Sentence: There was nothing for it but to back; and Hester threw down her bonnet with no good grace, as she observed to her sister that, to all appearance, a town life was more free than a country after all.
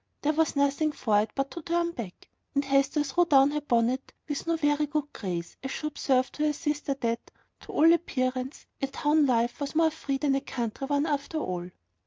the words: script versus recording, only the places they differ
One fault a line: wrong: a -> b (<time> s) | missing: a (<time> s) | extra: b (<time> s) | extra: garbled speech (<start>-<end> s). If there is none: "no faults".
extra: turn (1.6 s)
extra: very (4.5 s)
extra: one (10.9 s)